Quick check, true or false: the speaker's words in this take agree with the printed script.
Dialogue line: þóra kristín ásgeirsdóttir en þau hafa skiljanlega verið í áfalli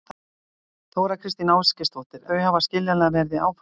false